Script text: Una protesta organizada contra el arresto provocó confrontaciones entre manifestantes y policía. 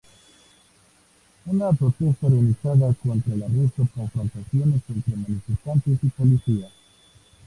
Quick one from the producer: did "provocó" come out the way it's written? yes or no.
no